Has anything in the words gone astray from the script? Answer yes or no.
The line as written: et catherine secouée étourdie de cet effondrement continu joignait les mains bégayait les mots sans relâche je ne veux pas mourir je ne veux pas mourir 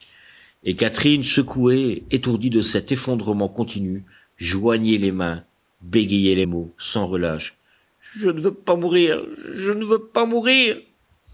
no